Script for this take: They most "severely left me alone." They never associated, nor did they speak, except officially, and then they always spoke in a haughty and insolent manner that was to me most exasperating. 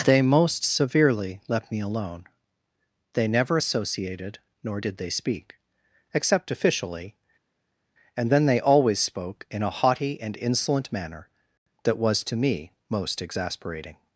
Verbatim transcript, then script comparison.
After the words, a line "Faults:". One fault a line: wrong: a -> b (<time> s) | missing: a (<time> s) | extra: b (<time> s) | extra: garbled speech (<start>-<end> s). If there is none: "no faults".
They most "severely left me alone." They never associated, nor did they speak, except officially, and then they always spoke in a haughty and insolent manner that was to me most exasperating.
Faults:
no faults